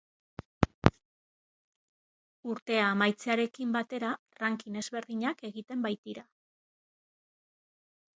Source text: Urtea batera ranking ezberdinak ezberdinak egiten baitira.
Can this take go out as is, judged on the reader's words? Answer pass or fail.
fail